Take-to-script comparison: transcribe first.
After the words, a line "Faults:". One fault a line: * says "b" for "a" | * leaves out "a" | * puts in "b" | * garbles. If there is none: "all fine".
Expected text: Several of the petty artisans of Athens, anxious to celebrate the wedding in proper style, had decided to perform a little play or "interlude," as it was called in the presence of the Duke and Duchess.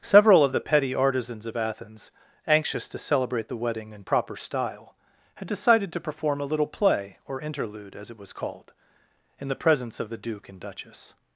Several of the petty artisans of Athens, anxious to celebrate the wedding in proper style, had decided to perform a little play or "interlude," as it was called in the presence of the Duke and Duchess.
Faults:
all fine